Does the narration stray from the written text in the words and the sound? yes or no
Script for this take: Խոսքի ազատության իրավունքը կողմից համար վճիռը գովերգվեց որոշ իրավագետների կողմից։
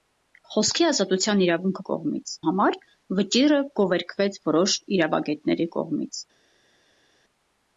no